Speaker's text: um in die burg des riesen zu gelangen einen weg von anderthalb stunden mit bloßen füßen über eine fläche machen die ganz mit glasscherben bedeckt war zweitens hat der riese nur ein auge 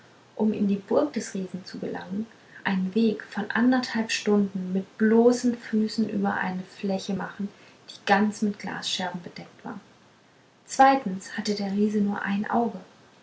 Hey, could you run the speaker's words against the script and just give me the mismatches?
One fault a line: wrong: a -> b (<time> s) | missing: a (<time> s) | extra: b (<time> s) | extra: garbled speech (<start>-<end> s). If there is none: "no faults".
wrong: hat -> hatte (11.4 s)